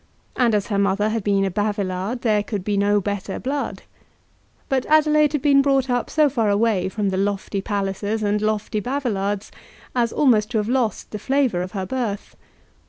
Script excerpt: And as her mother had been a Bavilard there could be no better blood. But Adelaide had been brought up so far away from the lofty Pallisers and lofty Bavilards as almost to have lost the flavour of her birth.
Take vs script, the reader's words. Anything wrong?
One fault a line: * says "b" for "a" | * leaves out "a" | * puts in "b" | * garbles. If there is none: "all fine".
all fine